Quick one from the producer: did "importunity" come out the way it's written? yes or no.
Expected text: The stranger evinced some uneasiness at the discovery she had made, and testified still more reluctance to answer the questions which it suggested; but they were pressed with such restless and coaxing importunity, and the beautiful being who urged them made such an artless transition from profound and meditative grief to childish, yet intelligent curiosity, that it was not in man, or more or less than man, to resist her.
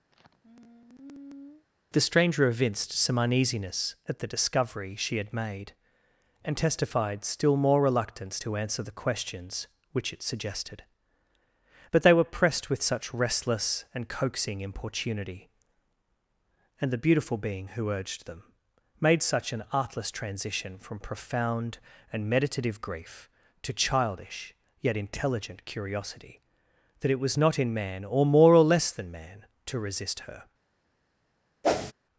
yes